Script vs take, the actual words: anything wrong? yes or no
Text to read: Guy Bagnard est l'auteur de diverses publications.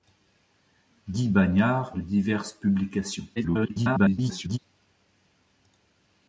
yes